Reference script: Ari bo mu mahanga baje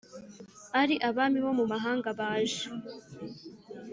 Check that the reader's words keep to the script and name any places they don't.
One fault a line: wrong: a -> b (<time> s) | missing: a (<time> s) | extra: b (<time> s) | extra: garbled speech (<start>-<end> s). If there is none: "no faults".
extra: abami (1.1 s)